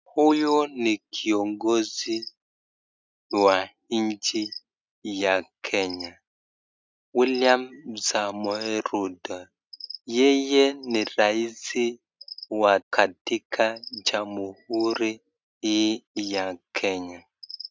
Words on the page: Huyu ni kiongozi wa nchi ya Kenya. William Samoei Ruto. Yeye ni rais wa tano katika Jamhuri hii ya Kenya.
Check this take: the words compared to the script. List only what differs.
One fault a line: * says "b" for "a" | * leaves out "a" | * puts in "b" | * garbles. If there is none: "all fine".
* leaves out "tano"